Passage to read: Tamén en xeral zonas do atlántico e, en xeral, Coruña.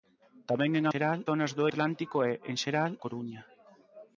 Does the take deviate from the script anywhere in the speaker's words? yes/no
no